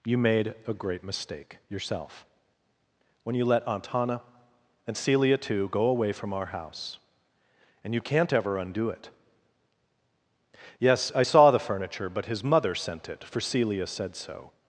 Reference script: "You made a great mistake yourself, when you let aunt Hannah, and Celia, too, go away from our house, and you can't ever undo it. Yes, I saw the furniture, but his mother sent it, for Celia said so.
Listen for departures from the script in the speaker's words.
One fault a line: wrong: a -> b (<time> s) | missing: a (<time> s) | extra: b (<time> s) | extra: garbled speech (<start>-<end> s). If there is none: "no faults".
no faults